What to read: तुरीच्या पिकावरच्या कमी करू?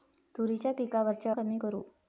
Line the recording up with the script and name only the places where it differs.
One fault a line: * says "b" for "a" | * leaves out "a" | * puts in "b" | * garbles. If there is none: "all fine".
all fine